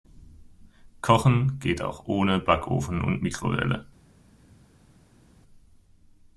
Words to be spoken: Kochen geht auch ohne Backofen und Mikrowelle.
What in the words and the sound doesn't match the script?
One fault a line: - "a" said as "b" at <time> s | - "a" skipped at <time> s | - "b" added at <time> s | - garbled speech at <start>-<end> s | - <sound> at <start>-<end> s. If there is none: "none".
none